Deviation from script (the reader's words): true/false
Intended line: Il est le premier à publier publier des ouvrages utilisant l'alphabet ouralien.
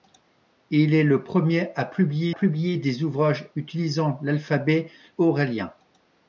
false